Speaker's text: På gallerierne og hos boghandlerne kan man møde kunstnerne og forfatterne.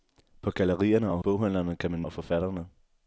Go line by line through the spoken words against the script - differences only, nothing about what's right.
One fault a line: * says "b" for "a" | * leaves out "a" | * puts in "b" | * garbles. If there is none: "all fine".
* leaves out "hos"
* leaves out "møde kunstnerne"